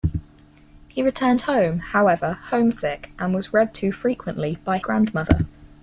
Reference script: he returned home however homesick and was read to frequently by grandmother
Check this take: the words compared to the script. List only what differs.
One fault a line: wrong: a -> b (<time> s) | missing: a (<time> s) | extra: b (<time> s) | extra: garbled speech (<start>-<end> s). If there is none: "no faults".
no faults